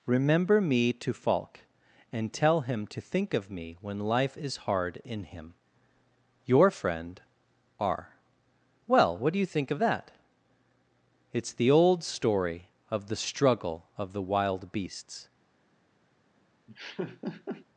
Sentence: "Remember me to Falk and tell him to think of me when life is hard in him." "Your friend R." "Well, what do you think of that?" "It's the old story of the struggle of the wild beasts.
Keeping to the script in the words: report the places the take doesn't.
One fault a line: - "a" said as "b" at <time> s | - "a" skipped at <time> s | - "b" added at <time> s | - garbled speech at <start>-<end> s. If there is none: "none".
none